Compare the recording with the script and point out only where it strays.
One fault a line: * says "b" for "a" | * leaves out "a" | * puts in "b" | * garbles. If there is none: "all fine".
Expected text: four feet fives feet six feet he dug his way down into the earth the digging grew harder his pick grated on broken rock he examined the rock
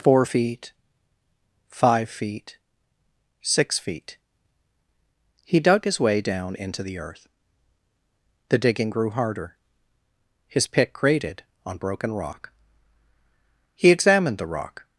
* says "five" for "fives"